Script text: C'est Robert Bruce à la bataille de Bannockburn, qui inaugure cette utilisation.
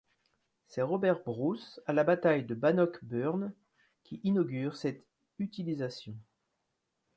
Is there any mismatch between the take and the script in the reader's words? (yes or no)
no